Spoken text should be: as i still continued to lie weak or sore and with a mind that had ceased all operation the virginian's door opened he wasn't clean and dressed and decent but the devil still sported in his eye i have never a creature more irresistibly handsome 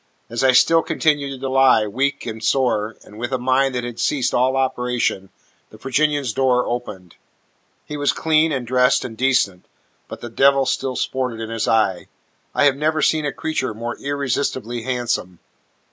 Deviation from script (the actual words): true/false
true